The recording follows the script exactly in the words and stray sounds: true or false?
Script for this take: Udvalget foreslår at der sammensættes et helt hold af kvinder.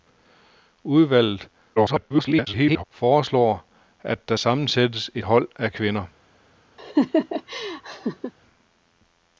false